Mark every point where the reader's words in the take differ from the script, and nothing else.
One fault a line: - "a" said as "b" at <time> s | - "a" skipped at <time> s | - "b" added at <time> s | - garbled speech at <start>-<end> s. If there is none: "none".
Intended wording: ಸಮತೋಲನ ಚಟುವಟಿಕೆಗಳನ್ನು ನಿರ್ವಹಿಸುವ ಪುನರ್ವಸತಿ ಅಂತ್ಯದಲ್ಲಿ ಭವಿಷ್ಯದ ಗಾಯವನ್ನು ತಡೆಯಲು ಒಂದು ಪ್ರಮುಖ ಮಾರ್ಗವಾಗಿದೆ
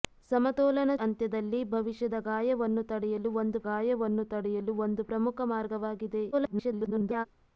- "ಚಟುವಟಿಕೆಗಳನ್ನು ನಿರ್ವಹಿಸುವ ಪುನರ್ವಸತಿ ಅಂತ್ಯದಲ್ಲಿ ಭವಿಷ್ಯದ" said as "ಅಂತ್ಯದಲ್ಲಿ ಭವಿಷ್ಯದ ಗಾಯವನ್ನು ತಡೆಯಲು ಒಂದು" at 1.0 s
- garbled speech at 6.3-7.3 s